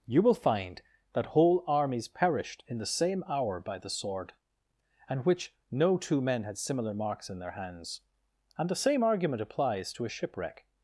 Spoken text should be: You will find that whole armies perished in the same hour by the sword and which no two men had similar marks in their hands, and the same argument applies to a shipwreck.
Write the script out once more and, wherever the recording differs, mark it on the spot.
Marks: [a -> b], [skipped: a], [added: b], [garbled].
You will find that whole armies perished in the same hour by the sword and which no two men had similar marks in their hands, and the same argument applies to a shipwreck.